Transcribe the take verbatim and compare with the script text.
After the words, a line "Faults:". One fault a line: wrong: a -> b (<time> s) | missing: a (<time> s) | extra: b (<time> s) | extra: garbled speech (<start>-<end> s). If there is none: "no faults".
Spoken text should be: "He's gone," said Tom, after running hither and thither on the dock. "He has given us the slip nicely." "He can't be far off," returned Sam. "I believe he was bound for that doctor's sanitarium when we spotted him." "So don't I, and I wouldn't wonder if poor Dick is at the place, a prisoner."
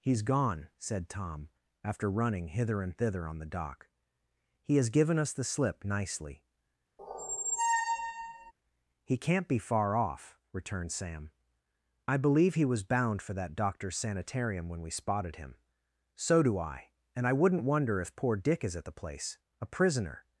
"He's gone," said Tom, after running hither and thither on the dock. "He has given us the slip nicely." "He can't be far off," returned Sam. "I believe he was bound for that doctor's sanitarium when we spotted him." "So do I, and I wouldn't wonder if poor Dick is at the place, a prisoner."
Faults:
wrong: don't -> do (16.4 s)